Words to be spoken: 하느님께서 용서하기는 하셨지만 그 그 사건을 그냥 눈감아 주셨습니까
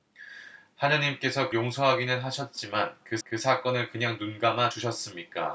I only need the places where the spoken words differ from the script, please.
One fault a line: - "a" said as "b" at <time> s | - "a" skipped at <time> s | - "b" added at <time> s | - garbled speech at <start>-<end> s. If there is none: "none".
none